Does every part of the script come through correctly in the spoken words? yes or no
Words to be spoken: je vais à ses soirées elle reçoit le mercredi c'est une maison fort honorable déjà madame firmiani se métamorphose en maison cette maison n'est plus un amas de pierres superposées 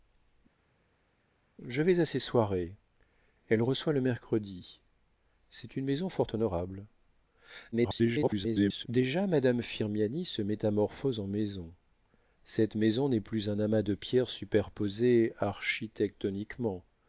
no